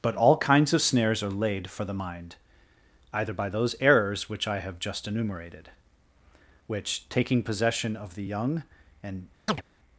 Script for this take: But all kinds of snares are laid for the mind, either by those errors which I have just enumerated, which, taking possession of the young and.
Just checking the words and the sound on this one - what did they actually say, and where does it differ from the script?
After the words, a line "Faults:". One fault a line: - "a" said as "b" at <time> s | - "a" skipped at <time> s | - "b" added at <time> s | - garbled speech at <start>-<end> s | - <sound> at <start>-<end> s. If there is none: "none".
But all kinds of snares are laid for the mind, either by those errors which I have just enumerated, which, taking possession of the young and.
Faults:
- chirp at 9.5-9.6 s